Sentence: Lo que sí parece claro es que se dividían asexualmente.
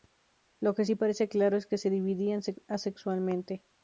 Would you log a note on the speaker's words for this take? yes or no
no